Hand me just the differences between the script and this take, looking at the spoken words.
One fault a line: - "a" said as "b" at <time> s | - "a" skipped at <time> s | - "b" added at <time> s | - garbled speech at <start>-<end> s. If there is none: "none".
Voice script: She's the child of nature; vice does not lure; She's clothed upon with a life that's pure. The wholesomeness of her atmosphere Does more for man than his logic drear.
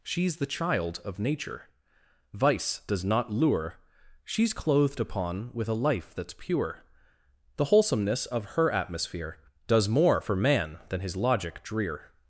none